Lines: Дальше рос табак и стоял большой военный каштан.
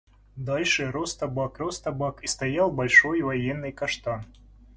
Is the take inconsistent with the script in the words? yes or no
yes